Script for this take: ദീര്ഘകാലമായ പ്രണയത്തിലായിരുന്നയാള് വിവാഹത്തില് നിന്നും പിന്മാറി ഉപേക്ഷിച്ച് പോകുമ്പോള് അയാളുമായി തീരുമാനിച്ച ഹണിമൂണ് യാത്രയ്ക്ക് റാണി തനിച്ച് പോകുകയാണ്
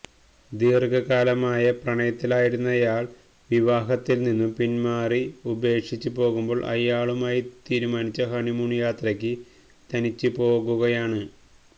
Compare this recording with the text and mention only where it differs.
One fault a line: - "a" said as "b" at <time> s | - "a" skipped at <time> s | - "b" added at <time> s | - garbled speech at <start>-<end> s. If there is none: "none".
- "റാണി" skipped at 9.3 s